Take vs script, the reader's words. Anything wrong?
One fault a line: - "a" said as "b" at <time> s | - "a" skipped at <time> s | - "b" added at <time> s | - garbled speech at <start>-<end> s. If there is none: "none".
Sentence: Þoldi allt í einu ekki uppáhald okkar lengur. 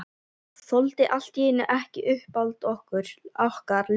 none